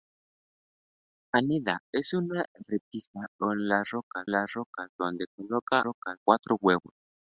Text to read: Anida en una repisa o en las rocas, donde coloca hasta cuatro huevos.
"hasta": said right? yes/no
no